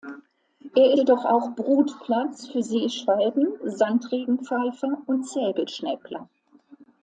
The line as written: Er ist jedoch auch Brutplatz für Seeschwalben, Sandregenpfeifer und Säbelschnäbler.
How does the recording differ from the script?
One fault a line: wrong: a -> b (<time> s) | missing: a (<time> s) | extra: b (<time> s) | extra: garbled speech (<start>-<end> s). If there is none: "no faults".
missing: ist (0.9 s)